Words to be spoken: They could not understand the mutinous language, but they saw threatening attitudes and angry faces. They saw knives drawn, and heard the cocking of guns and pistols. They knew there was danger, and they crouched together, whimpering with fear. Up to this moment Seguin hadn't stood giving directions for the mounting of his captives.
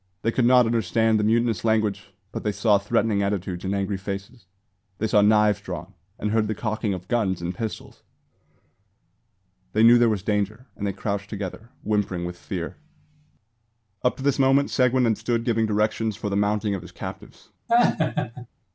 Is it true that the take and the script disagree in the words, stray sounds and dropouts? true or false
true